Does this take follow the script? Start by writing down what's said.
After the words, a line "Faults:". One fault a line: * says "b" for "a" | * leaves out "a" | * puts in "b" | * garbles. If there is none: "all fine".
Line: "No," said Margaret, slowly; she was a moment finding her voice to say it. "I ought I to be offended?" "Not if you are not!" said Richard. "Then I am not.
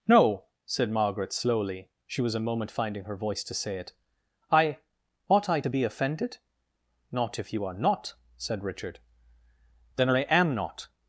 "No," said Margaret, slowly; she was a moment finding her voice to say it. "I ought I to be offended?" "Not if you are not!" said Richard. "Then I am not.
Faults:
all fine